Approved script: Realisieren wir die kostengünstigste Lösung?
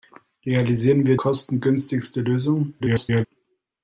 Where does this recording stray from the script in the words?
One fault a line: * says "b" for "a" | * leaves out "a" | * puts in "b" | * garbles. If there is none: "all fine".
* leaves out "die"
* garbles